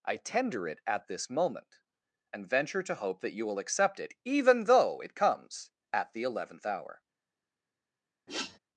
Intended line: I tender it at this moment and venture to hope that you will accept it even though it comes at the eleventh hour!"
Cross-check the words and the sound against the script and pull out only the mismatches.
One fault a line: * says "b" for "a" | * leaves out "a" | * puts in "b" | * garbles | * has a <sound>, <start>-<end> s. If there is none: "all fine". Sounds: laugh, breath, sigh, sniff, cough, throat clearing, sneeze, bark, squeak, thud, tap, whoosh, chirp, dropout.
* has a sniff, 8.3-8.6 s